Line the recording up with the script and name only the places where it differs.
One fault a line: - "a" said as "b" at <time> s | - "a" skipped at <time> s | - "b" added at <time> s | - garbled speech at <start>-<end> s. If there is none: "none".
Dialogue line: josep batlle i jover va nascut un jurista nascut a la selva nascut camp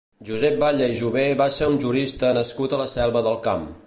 - "nascut" said as "ser" at 1.6 s
- "nascut" said as "del" at 3.3 s